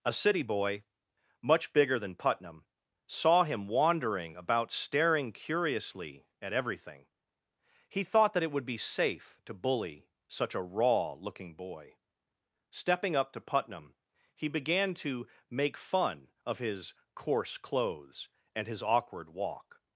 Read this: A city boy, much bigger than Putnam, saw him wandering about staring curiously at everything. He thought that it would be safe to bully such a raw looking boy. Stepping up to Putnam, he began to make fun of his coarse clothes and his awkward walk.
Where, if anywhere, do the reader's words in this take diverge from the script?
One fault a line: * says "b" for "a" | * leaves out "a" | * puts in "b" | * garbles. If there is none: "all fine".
all fine